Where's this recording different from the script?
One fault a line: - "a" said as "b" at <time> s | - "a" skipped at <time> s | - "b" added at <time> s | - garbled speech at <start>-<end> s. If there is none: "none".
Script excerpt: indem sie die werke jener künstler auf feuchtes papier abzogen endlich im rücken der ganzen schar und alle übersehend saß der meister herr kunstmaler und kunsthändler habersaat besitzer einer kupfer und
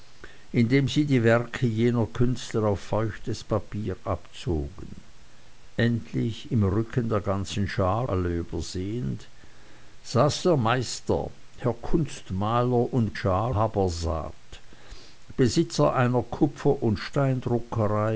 - "und" skipped at 8.1 s
- "kunsthändler" said as "schar" at 13.1 s